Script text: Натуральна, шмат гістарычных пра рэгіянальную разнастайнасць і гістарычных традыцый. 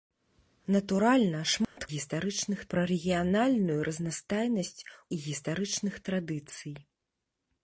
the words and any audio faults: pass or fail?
fail